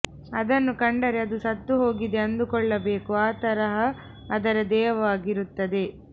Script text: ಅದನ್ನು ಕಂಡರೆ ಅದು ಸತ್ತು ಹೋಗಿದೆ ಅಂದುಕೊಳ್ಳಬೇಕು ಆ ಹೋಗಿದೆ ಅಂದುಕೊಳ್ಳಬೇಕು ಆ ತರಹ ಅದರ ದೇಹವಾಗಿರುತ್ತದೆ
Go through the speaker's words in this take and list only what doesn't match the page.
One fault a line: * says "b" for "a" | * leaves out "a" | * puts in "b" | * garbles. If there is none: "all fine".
* leaves out "ಹೋಗಿದೆ ಅಂದುಕೊಳ್ಳಬೇಕು ಆ"